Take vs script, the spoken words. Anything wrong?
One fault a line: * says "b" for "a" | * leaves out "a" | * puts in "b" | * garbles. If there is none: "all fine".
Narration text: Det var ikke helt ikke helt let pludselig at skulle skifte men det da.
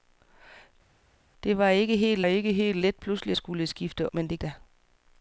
all fine